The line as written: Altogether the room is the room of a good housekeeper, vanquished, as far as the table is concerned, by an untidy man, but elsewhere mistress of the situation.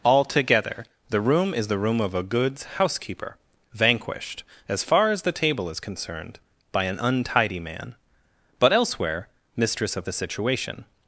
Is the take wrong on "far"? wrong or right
right